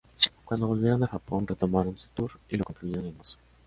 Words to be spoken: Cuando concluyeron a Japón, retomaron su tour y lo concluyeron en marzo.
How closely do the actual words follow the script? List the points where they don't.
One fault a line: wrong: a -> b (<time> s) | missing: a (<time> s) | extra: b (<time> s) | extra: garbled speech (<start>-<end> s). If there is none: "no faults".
wrong: concluyeron -> volvieron (0.7 s)